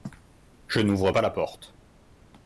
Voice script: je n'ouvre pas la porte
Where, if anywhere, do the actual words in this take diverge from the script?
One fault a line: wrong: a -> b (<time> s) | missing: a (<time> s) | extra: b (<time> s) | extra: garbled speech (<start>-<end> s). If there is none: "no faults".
no faults